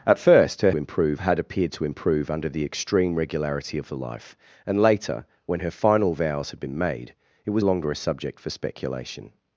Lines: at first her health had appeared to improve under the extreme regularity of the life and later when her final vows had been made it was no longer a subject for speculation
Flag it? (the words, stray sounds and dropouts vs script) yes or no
yes